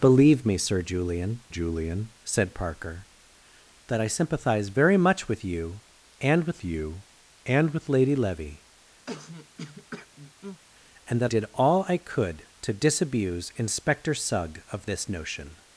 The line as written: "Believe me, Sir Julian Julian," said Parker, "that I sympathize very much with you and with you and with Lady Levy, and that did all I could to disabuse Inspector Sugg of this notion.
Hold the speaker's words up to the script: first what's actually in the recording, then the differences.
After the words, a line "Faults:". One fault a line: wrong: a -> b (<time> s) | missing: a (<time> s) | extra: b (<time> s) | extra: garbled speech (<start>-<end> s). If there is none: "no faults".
"Believe me, Sir Julian Julian," said Parker, "that I sympathize very much with you and with you and with Lady Levy, and that did all I could to disabuse Inspector Sugg of this notion.
Faults:
no faults